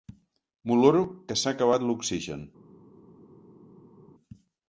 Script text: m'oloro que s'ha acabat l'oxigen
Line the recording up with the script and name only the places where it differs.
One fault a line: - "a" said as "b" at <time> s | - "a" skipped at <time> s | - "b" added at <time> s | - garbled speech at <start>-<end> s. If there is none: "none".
none